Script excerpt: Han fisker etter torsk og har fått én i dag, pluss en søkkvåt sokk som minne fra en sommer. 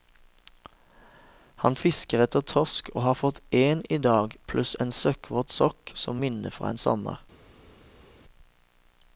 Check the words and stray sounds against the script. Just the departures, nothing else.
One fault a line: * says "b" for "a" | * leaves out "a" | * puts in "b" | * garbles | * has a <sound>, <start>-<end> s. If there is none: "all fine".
all fine